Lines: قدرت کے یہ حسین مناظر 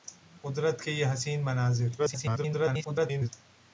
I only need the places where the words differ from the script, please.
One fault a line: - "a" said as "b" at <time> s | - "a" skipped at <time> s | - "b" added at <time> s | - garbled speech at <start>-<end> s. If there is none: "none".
- garbled speech at 2.0-3.3 s